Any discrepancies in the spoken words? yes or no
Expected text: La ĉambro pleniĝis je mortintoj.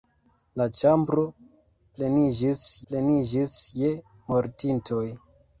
yes